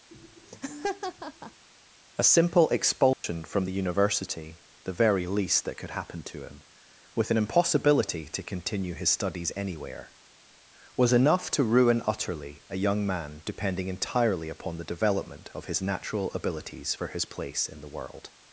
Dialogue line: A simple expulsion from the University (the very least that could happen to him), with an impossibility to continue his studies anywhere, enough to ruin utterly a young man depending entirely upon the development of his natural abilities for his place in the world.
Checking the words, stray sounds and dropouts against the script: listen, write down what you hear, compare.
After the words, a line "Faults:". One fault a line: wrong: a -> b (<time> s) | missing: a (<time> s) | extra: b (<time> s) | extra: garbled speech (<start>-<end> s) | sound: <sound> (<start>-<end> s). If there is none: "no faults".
A simple expulsion from the University (the very least that could happen to him), with an impossibility to continue his studies anywhere, was enough to ruin utterly a young man depending entirely upon the development of his natural abilities for his place in the world.
Faults:
sound: laugh (0.1-1.6 s)
sound: dropout (3.1-3.2 s)
extra: was (11.0 s)